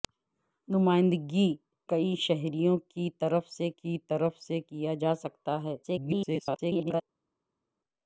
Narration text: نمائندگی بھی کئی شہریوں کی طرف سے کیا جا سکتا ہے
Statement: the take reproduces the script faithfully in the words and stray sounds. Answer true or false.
false